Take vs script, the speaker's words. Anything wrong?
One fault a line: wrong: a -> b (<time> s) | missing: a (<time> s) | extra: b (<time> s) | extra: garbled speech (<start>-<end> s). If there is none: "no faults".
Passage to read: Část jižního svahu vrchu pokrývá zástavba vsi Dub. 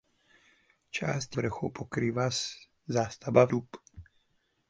missing: jižního svahu (1.4 s)
missing: vsi (3.5 s)